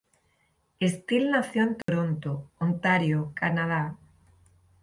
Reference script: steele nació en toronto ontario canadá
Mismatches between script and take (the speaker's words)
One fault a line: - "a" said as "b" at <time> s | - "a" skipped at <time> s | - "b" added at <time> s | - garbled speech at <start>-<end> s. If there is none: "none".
none